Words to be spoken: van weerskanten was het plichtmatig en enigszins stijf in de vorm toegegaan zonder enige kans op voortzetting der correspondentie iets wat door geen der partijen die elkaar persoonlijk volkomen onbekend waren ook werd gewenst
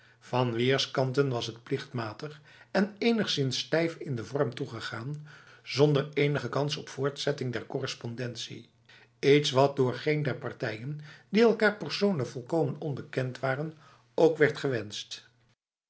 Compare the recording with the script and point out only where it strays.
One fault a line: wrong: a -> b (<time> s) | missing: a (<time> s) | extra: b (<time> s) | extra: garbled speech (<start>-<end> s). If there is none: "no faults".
no faults